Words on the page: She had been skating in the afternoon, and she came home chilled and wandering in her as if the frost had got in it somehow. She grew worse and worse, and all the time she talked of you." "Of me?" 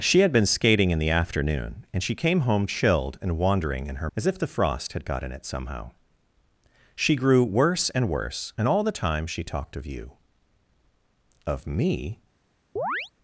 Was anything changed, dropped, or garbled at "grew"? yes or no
no